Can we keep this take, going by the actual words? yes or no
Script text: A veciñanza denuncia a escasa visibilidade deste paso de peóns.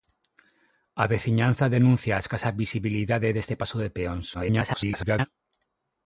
no